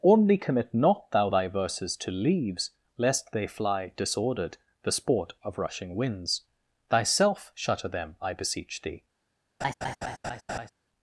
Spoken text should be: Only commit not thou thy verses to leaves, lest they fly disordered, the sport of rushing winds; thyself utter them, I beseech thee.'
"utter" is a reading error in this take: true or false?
true